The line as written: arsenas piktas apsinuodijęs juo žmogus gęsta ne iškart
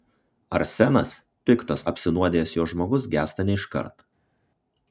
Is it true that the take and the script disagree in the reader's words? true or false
false